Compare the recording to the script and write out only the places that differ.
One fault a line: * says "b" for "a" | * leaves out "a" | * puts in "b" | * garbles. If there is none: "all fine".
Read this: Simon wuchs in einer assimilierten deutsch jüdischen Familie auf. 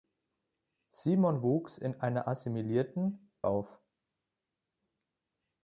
* leaves out "deutsch jüdischen Familie"